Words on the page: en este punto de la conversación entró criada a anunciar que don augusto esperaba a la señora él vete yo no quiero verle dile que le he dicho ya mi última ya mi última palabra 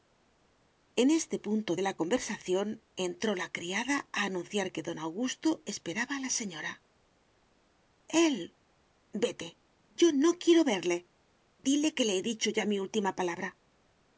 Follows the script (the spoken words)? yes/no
no